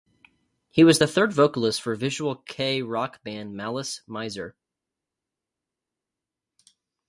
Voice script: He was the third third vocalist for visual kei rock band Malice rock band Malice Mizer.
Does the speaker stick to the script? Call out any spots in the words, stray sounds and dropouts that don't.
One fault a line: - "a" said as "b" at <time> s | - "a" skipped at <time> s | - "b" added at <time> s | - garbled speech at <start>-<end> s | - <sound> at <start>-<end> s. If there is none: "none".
- "third" skipped at 1.3 s
- "rock band Malice" skipped at 4.0 s